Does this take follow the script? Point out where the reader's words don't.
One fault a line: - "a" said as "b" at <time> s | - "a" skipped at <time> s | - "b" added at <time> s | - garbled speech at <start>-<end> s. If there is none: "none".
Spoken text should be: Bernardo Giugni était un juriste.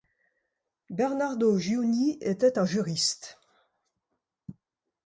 none